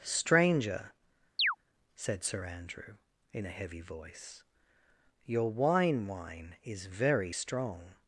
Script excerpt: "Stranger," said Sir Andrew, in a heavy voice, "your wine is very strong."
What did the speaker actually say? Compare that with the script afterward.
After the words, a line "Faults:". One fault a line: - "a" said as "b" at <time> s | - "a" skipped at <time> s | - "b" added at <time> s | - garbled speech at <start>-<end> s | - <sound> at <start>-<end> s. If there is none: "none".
"Stranger," said Sir Andrew, in a heavy voice, "your wine wine is very strong."
Faults:
- chirp at 1.4-1.6 s
- "wine" added at 6.1 s